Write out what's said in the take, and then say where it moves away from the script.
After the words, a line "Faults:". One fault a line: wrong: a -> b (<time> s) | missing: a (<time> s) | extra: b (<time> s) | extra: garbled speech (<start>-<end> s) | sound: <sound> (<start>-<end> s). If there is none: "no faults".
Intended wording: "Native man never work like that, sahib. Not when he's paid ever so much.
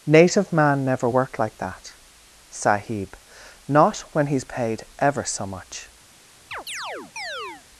"Native man never worked like that, sahib. Not when he's paid ever so much.
Faults:
wrong: work -> worked (1.1 s)
sound: chirp (6.5-7.6 s)